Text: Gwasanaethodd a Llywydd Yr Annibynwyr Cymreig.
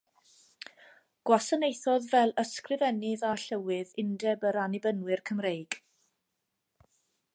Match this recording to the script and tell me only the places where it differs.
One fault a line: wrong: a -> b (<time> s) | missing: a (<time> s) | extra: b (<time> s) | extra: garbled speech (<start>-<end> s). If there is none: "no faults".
extra: fel Ysgrifennydd (2.1 s)
extra: Undeb (4.1 s)